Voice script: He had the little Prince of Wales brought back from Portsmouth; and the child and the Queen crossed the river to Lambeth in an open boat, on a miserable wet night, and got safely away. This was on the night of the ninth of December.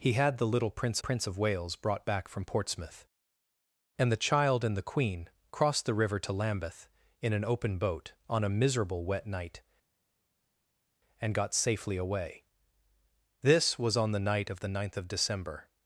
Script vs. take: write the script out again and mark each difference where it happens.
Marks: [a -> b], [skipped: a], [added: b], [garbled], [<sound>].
He had the little Prince [added: Prince] of Wales brought back from Portsmouth; and the child and the Queen crossed the river to Lambeth in an open boat, on a miserable wet night, and got safely away. This was on the night of the ninth of December.